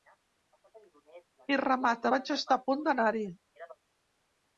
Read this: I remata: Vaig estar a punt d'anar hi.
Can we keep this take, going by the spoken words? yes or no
yes